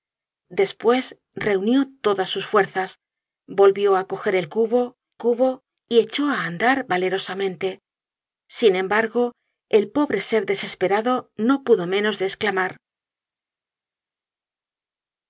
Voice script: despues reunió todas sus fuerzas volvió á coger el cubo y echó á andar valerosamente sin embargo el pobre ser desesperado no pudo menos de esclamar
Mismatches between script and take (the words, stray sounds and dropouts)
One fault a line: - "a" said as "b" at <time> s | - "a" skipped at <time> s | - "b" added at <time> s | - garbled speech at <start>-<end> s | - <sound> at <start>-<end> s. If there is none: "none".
- "cubo" added at 5.2 s